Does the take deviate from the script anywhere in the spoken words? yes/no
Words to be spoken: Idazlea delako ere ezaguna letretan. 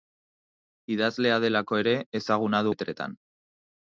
no